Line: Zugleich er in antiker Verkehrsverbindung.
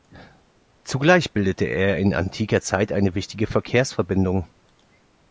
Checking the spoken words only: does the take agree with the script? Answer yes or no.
no